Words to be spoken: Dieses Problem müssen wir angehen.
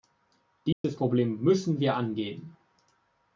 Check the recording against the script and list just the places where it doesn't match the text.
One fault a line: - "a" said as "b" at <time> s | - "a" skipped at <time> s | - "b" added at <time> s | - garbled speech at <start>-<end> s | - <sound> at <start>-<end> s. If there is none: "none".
- dropout at 0.7-0.8 s